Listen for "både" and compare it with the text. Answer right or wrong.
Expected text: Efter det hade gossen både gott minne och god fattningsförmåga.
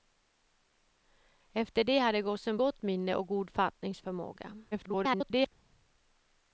wrong